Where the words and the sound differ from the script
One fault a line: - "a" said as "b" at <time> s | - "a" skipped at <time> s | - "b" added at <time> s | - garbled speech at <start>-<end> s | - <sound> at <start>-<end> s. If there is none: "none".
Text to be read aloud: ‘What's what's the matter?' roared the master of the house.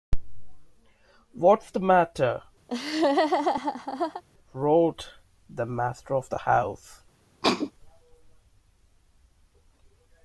- "what's" skipped at 1.7 s
- laugh at 2.7-4.2 s
- sneeze at 7.4-7.7 s